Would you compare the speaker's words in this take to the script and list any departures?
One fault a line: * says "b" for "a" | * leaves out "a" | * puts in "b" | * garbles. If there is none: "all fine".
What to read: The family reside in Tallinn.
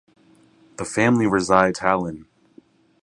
* leaves out "in"